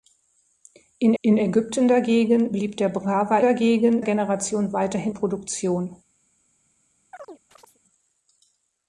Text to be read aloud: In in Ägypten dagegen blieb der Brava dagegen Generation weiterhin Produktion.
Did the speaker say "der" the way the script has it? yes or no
yes